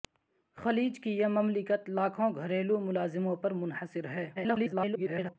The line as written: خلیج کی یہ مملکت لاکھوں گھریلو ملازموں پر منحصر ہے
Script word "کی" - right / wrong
right